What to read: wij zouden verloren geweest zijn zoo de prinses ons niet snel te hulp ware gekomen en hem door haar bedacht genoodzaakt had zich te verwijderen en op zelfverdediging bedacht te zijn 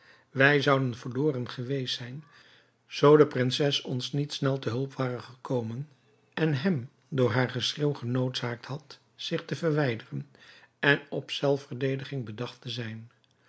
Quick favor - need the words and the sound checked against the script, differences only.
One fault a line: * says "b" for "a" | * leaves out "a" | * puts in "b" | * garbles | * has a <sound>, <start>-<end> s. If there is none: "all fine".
* says "geschreeuw" for "bedacht"